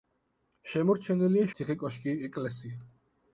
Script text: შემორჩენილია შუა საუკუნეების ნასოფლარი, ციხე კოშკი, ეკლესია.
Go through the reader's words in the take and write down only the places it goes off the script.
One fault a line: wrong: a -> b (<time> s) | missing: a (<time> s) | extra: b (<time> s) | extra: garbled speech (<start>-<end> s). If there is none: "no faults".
missing: შუა საუკუნეების ნასოფლარი (1.5 s)